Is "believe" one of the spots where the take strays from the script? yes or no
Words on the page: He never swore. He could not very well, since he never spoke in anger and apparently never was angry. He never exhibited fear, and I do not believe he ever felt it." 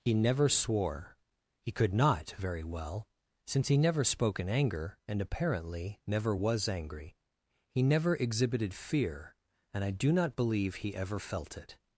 no